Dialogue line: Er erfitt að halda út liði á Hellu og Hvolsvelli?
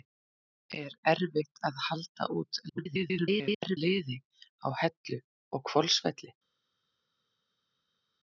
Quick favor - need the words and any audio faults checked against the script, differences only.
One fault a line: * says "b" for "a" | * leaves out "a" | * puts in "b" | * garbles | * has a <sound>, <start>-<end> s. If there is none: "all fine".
* garbles